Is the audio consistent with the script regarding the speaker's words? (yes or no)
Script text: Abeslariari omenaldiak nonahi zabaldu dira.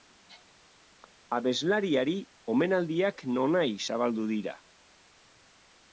yes